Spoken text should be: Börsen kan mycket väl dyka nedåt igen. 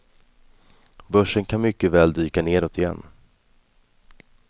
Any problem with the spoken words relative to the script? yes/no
no